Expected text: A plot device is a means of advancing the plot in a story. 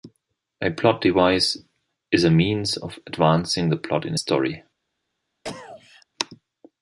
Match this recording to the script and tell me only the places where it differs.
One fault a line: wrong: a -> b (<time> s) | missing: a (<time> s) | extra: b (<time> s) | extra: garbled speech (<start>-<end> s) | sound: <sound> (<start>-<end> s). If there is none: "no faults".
sound: cough (5.4-6.1 s)